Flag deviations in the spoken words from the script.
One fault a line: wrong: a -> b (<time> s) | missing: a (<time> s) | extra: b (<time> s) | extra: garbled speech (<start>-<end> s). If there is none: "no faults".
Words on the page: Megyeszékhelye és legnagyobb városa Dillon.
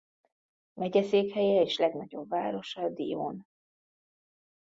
no faults